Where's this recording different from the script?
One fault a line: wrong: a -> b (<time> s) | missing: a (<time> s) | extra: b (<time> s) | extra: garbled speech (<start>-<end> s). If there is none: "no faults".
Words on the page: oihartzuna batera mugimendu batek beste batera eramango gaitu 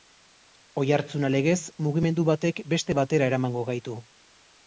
wrong: batera -> legez (1.3 s)